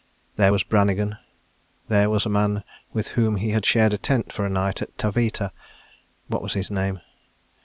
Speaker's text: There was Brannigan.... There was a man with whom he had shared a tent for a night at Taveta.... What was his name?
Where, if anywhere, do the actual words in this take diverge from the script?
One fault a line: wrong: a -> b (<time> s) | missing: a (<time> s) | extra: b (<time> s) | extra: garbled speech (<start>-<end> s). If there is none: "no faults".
no faults